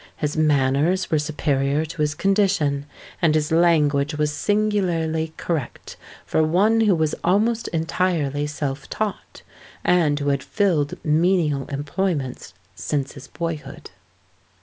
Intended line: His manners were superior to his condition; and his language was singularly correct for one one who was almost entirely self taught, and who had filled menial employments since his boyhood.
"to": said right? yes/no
yes